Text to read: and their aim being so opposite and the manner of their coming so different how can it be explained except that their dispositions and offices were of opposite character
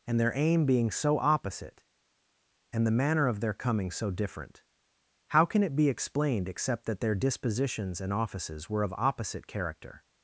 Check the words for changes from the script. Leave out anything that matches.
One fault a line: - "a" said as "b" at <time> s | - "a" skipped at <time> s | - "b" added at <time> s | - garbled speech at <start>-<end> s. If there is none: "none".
none